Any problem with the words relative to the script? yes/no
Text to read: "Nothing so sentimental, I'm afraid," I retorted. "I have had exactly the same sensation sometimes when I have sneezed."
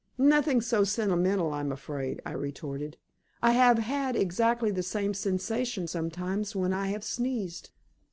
no